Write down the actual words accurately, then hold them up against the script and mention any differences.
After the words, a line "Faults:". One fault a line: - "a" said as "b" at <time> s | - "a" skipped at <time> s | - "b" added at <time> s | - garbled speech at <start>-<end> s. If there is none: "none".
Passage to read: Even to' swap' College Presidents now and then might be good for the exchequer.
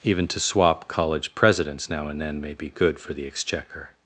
Even to' swap' College Presidents now and then may be good for the exchequer.
Faults:
- "might" said as "may" at 2.4 s